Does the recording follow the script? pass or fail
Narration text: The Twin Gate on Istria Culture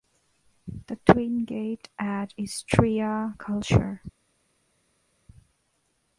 fail